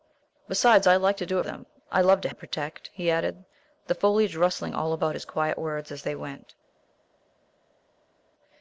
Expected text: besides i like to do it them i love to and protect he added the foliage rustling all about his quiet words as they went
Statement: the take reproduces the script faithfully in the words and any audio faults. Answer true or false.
true